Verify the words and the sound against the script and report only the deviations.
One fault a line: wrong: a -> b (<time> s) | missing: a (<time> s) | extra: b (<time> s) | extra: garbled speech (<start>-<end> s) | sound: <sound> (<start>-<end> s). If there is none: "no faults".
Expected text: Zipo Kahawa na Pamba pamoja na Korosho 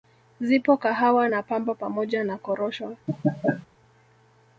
sound: laugh (3.1-3.7 s)